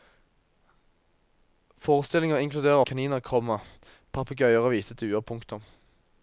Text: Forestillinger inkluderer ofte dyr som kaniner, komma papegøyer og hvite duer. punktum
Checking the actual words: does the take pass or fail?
fail